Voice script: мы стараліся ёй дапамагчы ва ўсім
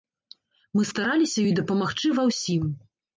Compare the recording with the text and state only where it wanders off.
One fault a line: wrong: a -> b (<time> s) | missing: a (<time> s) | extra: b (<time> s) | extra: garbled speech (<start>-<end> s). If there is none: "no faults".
no faults